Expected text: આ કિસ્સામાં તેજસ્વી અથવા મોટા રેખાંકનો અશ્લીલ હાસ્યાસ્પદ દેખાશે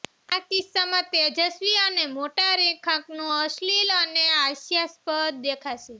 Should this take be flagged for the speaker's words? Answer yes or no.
yes